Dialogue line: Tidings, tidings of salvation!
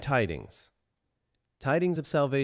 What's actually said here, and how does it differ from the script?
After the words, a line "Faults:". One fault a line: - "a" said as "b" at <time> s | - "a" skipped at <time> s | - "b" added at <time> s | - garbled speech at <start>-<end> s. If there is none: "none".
Tidings, tidings of salvation!
Faults:
none